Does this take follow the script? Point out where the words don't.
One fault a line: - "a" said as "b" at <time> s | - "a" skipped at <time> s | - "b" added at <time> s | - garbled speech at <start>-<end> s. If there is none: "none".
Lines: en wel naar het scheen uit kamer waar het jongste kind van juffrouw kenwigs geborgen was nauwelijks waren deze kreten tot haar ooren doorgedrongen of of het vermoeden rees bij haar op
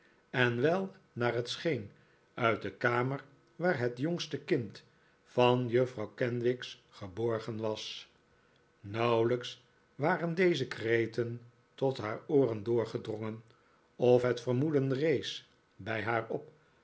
- "de" added at 2.6 s
- "of" skipped at 14.2 s